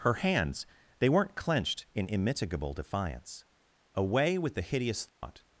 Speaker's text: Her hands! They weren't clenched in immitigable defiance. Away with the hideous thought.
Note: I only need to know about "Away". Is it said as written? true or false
true